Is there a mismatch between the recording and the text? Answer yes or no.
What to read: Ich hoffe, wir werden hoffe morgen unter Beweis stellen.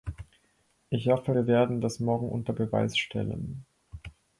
yes